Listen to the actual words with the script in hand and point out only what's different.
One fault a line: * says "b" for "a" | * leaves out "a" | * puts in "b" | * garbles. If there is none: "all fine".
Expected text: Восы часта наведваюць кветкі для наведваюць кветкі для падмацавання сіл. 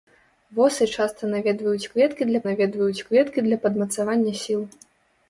all fine